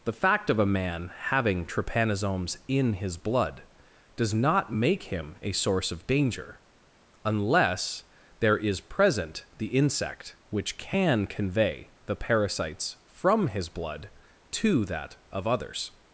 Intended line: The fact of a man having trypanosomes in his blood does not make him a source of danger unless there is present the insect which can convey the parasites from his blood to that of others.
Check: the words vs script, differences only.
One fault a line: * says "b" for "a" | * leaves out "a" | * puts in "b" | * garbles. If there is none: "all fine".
all fine